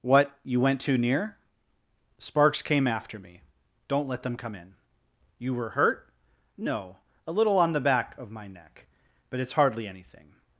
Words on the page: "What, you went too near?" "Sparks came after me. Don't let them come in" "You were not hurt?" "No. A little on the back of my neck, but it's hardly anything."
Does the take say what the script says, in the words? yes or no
no